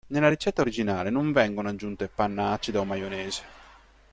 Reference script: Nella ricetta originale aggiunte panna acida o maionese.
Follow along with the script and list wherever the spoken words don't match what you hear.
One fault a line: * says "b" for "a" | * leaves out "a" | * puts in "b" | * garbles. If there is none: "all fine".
* puts in "non vengono"